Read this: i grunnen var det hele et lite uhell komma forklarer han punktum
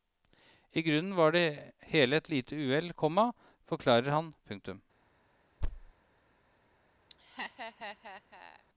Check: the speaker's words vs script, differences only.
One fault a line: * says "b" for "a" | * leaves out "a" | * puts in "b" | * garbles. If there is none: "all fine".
all fine